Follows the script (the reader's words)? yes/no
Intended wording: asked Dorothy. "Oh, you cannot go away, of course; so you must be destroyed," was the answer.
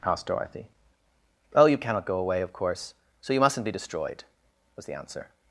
no